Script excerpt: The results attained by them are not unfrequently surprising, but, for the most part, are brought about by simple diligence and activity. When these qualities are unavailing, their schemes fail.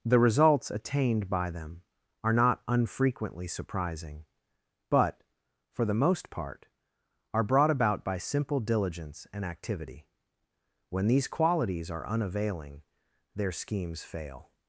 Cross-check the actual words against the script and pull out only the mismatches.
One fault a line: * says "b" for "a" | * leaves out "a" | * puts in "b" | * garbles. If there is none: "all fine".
all fine